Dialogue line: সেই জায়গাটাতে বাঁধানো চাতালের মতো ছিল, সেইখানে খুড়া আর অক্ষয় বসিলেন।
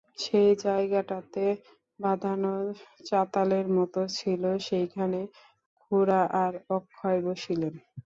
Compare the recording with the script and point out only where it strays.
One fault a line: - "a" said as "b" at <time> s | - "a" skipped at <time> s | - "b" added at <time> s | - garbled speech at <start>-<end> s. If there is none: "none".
none